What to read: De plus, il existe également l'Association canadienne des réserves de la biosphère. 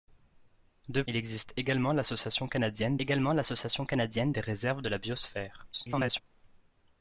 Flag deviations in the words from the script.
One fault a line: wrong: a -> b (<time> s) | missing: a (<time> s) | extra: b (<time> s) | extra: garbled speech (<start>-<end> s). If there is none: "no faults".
missing: plus (1.0 s)
extra: également l'Association canadienne (3.0 s)
extra: garbled speech (5.7-6.2 s)